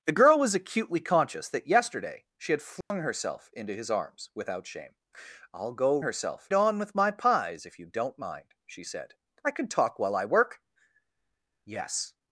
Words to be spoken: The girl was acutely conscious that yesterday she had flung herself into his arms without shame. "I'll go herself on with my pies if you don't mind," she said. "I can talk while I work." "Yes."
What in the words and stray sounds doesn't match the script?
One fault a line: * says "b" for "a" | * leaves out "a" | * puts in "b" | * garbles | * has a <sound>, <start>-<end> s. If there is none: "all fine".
* has a dropout, 2.8-2.9 s